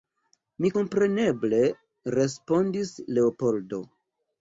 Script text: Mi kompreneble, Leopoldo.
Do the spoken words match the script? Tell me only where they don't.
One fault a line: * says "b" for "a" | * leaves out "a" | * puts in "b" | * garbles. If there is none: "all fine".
* puts in "respondis"